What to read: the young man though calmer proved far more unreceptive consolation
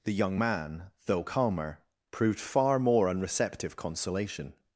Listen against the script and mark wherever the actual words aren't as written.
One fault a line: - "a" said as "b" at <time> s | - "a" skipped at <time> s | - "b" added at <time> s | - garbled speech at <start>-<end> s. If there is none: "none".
none